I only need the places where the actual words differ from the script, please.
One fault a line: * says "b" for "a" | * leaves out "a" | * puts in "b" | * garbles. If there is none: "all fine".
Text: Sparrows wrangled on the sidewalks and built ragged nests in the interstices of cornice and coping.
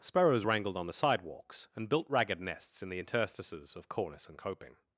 all fine